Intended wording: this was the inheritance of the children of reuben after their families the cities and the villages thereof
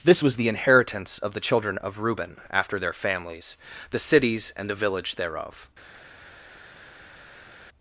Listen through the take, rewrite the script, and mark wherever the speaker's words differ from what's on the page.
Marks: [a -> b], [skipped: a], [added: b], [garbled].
this was the inheritance of the children of reuben after their families the cities and the [villages -> village] thereof